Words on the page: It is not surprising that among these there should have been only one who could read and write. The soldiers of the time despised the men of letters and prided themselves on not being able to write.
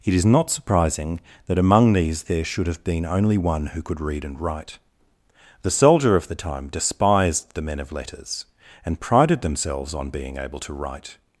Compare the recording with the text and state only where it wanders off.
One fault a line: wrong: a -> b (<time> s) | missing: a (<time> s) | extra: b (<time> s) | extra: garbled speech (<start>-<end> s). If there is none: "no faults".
wrong: soldiers -> soldier (5.7 s)
missing: not (10.1 s)